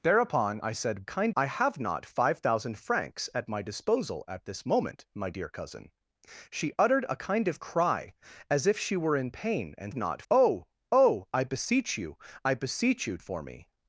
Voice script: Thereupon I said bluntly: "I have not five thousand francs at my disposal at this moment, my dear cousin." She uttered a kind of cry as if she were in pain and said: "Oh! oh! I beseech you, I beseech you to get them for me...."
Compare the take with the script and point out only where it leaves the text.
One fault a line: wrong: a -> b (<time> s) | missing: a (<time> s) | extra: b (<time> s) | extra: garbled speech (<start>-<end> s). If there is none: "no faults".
wrong: bluntly -> kind (1.1 s)
wrong: said -> not (9.9 s)
missing: to get them (13.2 s)